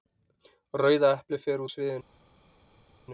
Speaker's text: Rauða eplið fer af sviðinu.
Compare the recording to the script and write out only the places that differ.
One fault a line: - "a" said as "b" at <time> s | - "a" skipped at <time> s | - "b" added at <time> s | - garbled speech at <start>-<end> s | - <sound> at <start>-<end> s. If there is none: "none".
none